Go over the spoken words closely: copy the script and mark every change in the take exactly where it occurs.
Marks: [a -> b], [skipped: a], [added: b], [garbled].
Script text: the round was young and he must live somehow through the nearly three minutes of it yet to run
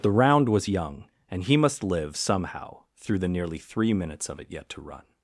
the round was young and he must live somehow through the nearly three minutes of it yet to run